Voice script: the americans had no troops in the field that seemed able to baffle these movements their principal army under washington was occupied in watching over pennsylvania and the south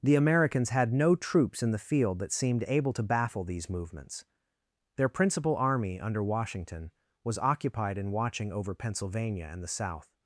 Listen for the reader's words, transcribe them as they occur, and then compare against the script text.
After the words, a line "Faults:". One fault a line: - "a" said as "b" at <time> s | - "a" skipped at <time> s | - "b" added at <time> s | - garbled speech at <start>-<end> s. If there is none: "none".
the americans had no troops in the field that seemed able to baffle these movements their principal army under washington was occupied in watching over pennsylvania and the south
Faults:
none